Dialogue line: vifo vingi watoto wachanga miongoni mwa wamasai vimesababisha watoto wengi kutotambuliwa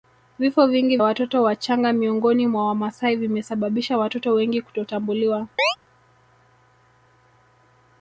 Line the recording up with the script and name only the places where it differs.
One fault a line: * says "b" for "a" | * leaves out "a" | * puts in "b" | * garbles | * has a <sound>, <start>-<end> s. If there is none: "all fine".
* has a chirp, 5.6-5.8 s